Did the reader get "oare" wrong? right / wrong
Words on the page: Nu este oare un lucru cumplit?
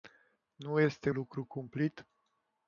wrong